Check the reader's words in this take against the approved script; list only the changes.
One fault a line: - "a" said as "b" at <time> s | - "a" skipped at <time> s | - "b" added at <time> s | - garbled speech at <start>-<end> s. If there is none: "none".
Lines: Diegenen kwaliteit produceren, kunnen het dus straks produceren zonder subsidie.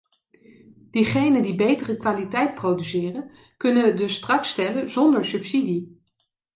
- "die betere" added at 1.4 s
- "produceren" said as "stellen" at 4.5 s